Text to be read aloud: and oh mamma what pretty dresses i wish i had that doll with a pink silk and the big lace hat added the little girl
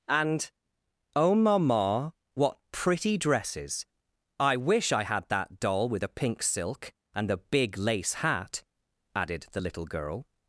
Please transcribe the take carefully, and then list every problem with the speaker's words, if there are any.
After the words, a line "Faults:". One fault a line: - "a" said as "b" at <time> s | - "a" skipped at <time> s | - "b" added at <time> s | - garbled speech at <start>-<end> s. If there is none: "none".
and oh mamma what pretty dresses i wish i had that doll with a pink silk and the big lace hat added the little girl
Faults:
none